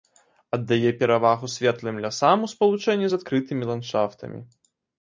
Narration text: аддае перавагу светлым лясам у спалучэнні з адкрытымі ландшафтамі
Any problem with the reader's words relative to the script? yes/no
no